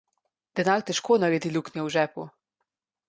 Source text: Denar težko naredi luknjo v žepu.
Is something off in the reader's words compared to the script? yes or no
no